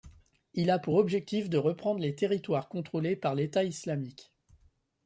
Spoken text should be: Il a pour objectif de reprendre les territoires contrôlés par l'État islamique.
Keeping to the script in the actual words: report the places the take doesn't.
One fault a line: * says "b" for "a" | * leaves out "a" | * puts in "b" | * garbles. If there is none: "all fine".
all fine